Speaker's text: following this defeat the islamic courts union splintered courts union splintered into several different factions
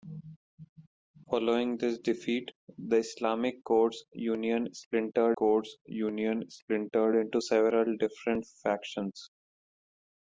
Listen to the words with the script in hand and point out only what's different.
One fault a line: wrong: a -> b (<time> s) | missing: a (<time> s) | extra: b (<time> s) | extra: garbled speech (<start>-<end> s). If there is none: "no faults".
no faults